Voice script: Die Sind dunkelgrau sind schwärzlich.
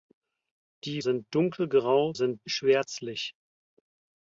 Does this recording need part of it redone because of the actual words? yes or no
no